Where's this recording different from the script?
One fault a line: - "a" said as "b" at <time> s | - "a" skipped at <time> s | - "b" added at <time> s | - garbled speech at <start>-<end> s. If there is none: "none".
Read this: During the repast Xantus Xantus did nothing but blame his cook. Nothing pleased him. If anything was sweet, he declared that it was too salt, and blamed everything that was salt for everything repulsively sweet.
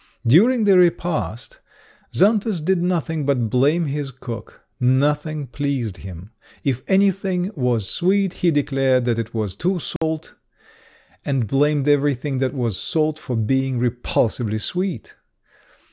- "Xantus" skipped at 2.6 s
- "everything" said as "being" at 13.4 s